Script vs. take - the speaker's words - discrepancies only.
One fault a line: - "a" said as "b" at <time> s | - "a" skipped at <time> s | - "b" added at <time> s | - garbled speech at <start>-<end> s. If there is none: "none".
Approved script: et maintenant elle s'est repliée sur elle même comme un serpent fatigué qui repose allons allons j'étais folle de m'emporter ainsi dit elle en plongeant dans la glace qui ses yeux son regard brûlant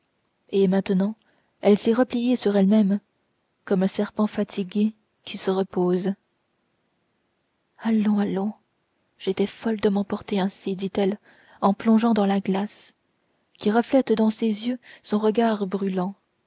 - "se" added at 5.4 s
- "reflète dans" added at 13.7 s